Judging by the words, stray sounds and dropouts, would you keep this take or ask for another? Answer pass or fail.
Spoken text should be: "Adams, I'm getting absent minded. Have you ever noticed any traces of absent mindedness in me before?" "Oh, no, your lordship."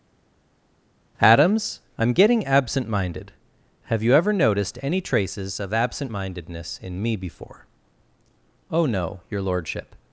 pass